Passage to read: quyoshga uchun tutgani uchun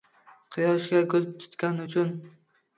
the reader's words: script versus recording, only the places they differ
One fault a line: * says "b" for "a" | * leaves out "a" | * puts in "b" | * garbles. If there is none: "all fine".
* says "gul" for "uchun"